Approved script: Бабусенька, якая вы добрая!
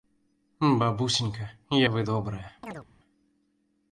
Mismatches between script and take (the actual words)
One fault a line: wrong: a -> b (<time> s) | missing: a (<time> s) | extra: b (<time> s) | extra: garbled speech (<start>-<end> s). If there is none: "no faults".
missing: якая (1.5 s)